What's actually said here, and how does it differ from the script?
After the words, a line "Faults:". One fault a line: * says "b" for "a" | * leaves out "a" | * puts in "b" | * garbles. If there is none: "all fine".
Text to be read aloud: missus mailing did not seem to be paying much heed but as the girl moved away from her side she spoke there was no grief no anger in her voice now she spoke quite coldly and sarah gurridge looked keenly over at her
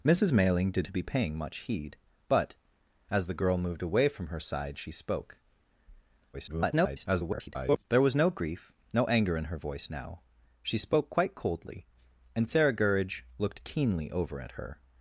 missus mailing did to be paying much heed but as the girl moved away from her side she spoke [garbled] there was no grief no anger in her voice now she spoke quite coldly and sarah gurridge looked keenly over at her
Faults:
* leaves out "not seem"
* garbles